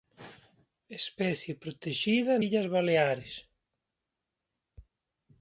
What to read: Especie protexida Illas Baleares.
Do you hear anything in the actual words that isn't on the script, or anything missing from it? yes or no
no